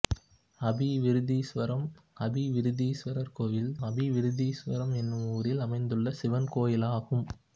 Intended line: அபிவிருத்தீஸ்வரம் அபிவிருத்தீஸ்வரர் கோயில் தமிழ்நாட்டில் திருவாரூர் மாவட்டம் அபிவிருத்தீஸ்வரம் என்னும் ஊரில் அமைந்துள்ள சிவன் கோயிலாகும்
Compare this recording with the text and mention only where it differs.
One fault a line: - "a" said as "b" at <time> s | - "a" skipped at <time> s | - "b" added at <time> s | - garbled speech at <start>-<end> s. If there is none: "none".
- "தமிழ்நாட்டில் திருவாரூர் மாவட்டம்" skipped at 3.7 s